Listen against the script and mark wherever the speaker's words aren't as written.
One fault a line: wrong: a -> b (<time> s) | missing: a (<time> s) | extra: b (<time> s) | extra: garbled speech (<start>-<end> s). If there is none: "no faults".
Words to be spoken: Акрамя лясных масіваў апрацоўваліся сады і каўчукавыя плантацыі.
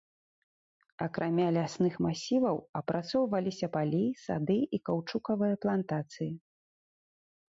extra: палі (3.8 s)